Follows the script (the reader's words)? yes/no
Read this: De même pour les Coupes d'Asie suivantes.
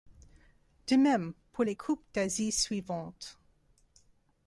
yes